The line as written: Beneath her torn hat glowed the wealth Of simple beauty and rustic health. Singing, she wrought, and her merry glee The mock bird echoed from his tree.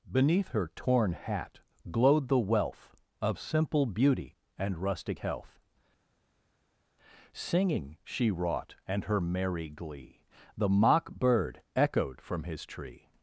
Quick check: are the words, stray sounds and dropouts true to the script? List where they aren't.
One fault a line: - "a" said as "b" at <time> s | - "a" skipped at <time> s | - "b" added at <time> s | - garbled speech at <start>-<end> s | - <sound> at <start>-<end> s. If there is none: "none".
none